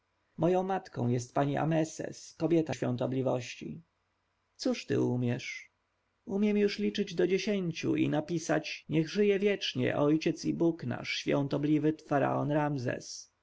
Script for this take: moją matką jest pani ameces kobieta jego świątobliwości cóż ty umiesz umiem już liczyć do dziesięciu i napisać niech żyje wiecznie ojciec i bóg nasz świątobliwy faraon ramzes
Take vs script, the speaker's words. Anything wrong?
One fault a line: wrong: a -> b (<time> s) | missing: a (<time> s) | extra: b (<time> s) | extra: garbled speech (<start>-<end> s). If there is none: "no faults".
missing: jego (2.8 s)